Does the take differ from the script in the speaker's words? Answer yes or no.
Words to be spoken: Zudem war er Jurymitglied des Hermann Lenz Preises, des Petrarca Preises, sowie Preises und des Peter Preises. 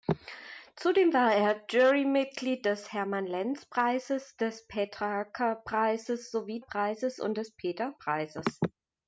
no